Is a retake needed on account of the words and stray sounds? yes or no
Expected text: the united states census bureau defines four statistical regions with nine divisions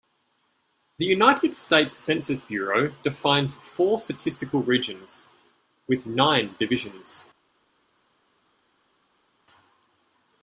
no